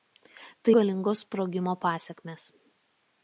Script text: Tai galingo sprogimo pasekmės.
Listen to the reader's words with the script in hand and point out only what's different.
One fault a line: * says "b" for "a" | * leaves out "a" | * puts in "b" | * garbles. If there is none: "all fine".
all fine